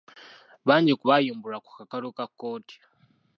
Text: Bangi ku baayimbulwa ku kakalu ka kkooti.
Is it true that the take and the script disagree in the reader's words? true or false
false